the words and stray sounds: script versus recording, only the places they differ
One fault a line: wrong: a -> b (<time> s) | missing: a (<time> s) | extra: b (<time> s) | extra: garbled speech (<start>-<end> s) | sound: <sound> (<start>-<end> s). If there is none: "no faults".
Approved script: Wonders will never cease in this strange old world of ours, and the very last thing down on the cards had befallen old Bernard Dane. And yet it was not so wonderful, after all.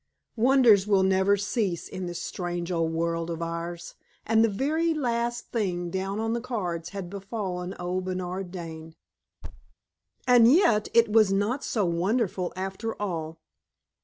sound: thud (9.4-9.7 s)